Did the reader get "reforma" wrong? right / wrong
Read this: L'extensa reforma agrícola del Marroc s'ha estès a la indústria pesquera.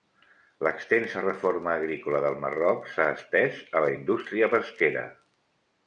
right